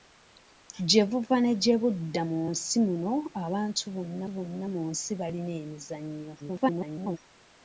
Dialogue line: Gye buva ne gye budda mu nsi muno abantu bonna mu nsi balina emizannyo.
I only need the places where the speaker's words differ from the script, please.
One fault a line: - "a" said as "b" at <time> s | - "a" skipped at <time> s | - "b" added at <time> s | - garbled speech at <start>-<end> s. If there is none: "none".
- "bonna" added at 4.3 s
- garbled speech at 6.4-7.2 s